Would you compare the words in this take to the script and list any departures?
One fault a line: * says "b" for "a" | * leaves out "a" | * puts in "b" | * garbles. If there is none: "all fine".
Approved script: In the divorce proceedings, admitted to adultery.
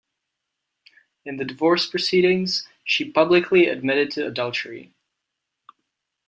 * puts in "she publicly"